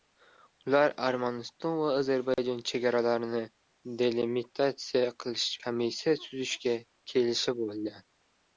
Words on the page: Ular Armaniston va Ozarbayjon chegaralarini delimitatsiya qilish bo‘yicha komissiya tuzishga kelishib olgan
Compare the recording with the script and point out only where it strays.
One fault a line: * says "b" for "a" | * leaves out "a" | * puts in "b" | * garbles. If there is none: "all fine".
* leaves out "bo‘yicha"